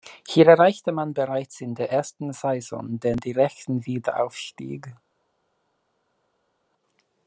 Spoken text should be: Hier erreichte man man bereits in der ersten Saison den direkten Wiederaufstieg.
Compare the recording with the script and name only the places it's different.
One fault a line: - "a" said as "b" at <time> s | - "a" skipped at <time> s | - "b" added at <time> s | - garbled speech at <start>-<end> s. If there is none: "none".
- "man" skipped at 1.1 s